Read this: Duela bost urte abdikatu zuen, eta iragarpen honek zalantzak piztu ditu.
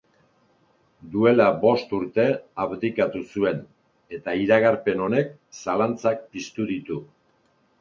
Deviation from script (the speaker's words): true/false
false